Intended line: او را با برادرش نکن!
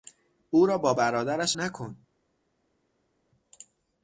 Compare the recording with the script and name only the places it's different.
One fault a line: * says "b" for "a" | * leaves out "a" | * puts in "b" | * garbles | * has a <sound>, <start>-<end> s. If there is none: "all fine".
all fine